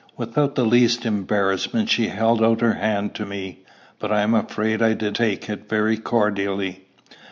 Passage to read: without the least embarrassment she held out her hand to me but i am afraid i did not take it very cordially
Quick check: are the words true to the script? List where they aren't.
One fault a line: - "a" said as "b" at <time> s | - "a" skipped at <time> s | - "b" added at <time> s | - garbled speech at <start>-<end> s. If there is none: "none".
- "not" skipped at 5.2 s